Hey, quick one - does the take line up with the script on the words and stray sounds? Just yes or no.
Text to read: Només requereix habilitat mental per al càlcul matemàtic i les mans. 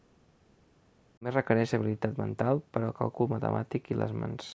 yes